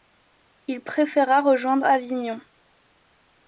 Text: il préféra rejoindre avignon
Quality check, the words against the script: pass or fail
pass